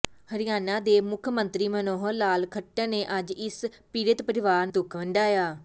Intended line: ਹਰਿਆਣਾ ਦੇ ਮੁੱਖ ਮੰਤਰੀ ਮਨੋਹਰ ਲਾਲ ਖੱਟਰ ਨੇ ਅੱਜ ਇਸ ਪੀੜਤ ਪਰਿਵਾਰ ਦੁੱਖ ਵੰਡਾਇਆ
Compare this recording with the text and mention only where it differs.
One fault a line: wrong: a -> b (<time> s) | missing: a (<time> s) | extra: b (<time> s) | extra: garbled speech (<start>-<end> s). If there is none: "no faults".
no faults